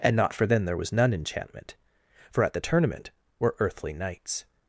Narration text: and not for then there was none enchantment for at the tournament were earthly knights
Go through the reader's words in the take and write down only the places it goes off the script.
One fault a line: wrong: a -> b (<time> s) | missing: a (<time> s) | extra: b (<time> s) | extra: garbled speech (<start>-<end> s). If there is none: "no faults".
no faults